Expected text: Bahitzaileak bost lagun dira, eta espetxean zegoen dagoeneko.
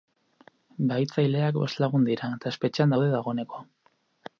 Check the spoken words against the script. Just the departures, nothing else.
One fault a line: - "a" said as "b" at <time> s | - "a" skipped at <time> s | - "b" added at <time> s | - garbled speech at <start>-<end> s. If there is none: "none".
- "zegoen" said as "daude" at 2.9 s